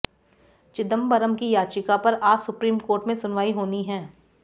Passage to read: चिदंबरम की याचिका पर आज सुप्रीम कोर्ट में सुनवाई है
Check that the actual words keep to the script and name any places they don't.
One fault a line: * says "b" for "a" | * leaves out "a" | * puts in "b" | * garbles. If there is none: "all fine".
* puts in "होनी"